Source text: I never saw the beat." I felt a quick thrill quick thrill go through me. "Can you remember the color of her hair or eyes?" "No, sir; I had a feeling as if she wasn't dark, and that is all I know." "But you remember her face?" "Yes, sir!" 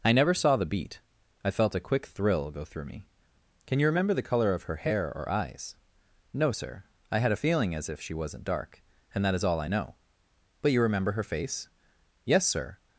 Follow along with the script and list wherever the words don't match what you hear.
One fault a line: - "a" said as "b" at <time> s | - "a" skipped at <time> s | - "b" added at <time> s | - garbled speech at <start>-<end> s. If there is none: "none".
- "quick thrill" skipped at 2.5 s